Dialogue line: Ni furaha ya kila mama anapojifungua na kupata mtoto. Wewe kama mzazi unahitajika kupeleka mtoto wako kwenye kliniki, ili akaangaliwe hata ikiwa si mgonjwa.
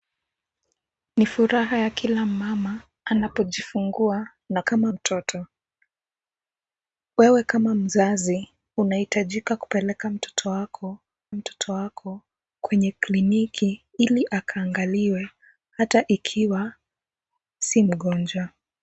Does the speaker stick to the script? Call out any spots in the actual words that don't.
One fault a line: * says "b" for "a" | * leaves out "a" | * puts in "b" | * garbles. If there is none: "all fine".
* says "kama" for "kupata"
* puts in "mtoto wako"